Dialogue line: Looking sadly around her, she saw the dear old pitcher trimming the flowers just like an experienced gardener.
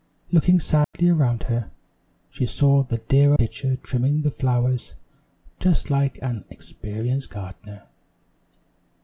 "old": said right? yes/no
no